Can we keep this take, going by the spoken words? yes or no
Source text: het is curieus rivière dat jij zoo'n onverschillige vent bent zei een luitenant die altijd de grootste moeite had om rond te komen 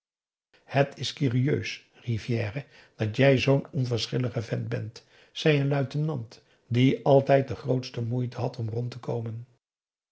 yes